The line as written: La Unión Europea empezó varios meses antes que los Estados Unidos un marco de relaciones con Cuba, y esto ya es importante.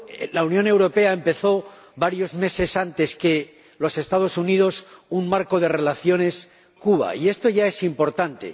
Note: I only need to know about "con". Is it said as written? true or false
false